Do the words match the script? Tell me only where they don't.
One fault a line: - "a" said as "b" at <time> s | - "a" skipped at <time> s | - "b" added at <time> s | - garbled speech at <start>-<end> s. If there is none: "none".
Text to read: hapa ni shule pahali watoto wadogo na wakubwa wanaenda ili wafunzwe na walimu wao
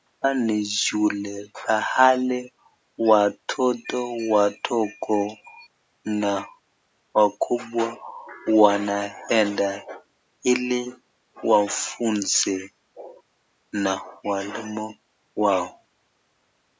none